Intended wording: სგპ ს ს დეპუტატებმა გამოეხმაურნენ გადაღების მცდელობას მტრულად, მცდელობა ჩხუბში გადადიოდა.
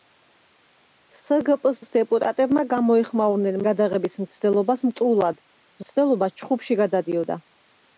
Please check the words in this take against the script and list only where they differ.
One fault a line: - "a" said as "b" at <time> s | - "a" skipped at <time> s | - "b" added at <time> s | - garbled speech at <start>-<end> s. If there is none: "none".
none